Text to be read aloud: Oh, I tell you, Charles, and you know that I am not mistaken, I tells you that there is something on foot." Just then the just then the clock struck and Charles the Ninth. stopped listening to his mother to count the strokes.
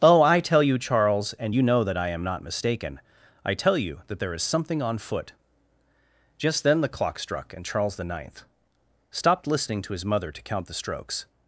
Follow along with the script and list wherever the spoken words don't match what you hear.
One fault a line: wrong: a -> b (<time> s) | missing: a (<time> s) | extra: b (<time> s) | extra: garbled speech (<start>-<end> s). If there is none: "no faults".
wrong: tells -> tell (3.5 s)
missing: just then the (6.9 s)